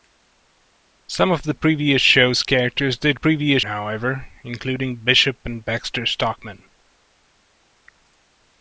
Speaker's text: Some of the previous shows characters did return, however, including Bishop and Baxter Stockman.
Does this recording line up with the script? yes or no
no